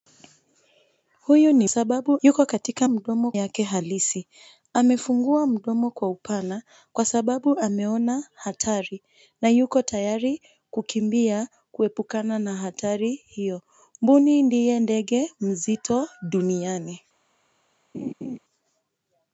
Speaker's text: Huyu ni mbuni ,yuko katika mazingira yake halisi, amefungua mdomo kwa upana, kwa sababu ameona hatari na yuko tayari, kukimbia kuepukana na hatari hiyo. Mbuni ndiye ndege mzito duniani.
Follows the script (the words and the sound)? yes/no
no